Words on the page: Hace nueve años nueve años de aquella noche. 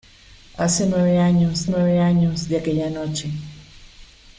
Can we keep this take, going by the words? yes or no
yes